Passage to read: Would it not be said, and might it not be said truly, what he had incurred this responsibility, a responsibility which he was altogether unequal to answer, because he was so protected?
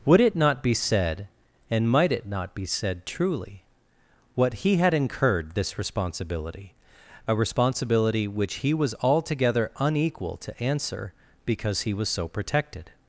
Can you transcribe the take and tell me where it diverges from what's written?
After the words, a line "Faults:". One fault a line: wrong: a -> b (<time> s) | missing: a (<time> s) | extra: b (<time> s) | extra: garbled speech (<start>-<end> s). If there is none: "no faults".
Would it not be said, and might it not be said truly, what he had incurred this responsibility, a responsibility which he was altogether unequal to answer, because he was so protected?
Faults:
no faults